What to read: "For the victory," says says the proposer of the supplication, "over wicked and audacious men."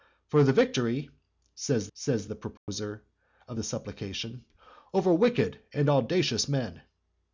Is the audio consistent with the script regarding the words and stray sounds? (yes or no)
no